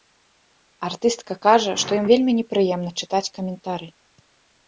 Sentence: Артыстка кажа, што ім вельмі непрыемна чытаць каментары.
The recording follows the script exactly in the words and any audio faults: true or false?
true